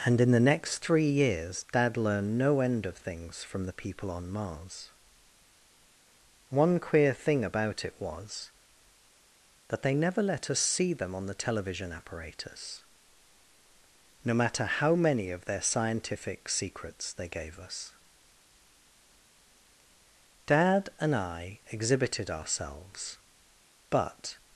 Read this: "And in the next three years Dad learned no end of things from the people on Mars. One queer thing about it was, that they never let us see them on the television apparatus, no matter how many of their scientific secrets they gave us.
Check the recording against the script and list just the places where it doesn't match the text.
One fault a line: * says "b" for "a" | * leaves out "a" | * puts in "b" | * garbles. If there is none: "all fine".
* puts in "Dad and I exhibited ourselves but"